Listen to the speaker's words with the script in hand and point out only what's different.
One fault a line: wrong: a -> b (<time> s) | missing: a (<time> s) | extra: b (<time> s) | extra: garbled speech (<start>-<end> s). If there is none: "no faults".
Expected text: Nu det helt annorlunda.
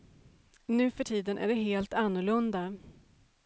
extra: för tiden är (0.9 s)